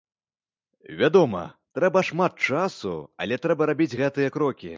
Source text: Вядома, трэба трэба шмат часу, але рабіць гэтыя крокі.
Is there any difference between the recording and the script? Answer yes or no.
yes